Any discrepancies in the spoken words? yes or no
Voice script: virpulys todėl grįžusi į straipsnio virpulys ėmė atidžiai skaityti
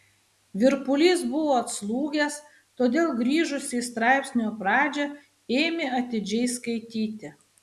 yes